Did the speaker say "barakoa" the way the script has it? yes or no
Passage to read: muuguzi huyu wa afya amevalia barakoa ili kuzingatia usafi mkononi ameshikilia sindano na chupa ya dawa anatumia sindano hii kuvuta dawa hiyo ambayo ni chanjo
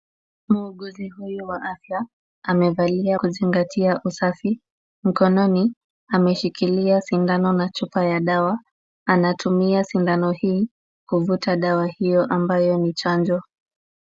no